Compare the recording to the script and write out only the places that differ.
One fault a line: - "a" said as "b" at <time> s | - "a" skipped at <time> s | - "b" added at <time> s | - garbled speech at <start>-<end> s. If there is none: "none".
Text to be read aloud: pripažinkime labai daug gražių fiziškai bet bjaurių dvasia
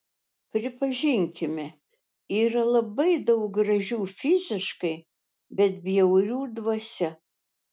- "yra" added at 2.4 s